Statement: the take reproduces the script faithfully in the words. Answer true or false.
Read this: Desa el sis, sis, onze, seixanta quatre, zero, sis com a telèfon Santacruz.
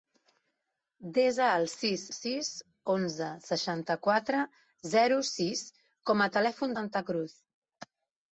true